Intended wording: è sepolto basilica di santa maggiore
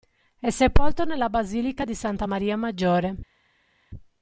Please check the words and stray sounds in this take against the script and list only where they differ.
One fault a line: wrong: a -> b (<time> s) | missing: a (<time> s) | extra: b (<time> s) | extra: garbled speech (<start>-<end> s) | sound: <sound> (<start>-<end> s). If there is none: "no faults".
extra: nella (1.1 s)
extra: maria (2.2 s)